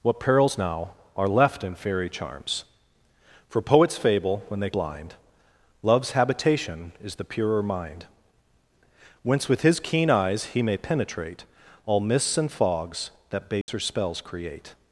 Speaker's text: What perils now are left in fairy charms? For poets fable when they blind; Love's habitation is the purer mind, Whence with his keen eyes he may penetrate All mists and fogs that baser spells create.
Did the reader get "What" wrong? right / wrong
right